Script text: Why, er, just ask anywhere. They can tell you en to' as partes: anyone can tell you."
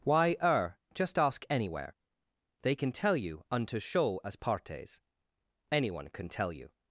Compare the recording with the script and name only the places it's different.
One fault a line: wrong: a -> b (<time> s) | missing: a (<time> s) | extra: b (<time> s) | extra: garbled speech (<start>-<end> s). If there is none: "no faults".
wrong: en to -> unto show (3.5 s)